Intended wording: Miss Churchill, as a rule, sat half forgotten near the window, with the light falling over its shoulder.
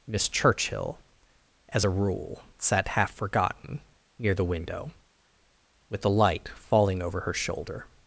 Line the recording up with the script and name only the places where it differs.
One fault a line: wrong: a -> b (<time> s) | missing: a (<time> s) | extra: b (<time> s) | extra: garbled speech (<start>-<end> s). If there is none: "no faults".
wrong: its -> her (7.2 s)